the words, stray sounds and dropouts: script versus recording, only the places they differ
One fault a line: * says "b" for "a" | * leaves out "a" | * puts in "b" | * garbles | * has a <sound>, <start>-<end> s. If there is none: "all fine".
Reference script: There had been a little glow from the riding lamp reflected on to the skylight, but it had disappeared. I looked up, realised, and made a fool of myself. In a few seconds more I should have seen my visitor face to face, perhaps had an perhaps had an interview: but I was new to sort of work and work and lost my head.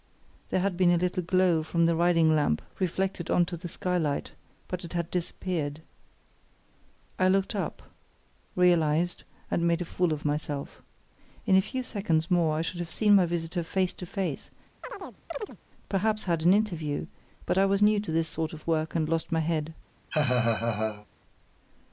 * has a chirp, 14.8-15.6 s
* leaves out "perhaps had an"
* puts in "this"
* leaves out "work and"
* has a laugh, 20.1-21.1 s